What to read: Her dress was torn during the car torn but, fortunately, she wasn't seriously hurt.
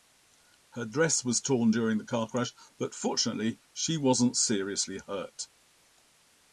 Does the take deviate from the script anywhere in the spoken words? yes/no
yes